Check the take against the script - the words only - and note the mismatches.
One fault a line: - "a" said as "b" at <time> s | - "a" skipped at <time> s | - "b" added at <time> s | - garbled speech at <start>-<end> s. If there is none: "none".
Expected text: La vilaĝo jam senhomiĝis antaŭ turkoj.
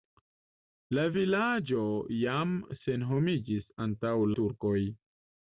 none